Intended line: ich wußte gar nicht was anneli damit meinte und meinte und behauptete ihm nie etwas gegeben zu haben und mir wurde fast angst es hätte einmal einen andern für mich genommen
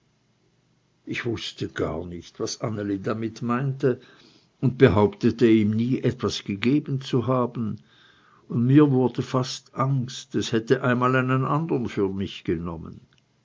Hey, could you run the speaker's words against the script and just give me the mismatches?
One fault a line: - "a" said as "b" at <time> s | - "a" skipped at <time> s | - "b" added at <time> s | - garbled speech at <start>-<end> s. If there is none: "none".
- "meinte und" skipped at 4.8 s